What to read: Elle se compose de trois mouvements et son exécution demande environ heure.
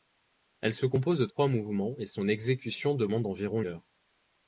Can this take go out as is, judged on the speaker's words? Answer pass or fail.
pass